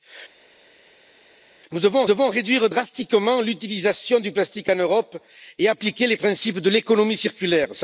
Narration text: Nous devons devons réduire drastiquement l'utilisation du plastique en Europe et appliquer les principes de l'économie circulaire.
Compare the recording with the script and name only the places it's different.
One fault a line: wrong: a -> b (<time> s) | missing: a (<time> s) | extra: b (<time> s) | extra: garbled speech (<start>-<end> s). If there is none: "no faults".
no faults